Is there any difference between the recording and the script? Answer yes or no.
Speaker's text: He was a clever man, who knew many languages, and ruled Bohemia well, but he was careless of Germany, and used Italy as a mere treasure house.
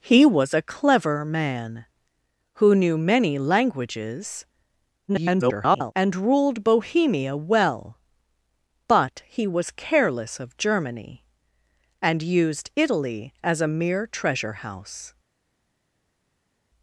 yes